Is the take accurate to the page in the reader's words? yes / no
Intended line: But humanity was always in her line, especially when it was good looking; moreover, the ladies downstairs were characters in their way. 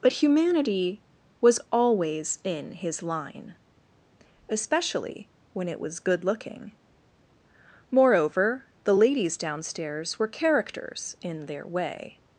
no